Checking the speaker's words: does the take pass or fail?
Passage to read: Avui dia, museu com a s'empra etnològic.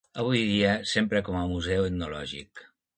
fail